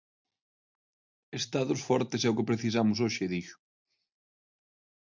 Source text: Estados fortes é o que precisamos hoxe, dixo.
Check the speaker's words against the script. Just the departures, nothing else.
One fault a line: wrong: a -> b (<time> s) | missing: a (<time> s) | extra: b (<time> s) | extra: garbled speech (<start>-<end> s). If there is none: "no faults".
no faults